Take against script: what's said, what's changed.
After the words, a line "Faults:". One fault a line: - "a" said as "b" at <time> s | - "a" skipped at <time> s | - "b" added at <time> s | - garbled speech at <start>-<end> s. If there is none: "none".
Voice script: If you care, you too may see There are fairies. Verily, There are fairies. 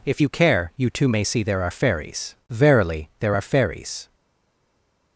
If you care, you too may see There are fairies. Verily, There are fairies.
Faults:
none